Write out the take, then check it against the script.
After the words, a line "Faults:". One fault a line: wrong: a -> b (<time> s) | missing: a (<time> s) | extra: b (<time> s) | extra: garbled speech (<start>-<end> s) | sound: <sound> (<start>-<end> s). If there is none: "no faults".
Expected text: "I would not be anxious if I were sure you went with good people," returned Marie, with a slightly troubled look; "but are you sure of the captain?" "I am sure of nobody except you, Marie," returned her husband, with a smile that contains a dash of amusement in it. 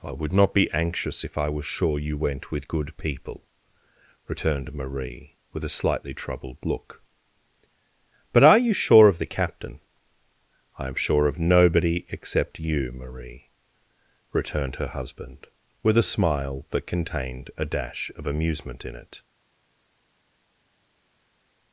"I would not be anxious if I were sure you went with good people," returned Marie, with a slightly troubled look; "but are you sure of the captain?" "I am sure of nobody except you, Marie," returned her husband, with a smile that contained a dash of amusement in it.
Faults:
wrong: contains -> contained (16.9 s)